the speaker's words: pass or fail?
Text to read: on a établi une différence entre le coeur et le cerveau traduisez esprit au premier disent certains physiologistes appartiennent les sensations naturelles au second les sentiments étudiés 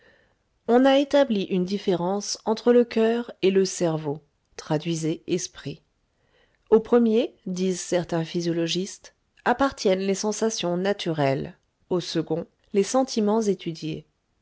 pass